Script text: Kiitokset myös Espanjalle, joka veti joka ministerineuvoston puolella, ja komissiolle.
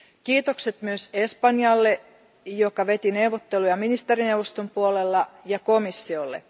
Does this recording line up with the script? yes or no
no